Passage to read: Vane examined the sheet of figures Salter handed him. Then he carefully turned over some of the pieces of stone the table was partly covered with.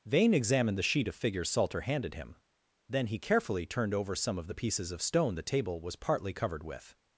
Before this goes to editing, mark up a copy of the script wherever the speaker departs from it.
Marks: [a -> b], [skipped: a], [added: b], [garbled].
Vane examined the sheet of figures Salter handed him. Then he carefully turned over some of the pieces of stone the table was partly covered with.